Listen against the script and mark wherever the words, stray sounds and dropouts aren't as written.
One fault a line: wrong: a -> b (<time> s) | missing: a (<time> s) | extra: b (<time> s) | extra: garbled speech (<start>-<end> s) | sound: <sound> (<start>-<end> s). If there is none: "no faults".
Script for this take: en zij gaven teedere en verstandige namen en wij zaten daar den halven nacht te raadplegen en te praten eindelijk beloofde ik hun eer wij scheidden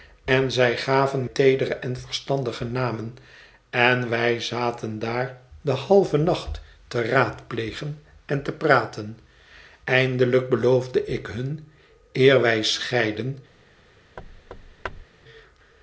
sound: thud (14.2-15.1 s)